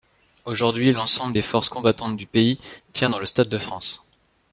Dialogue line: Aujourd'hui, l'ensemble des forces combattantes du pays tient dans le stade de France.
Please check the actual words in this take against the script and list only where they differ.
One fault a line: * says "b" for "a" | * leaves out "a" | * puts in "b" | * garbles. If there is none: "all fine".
all fine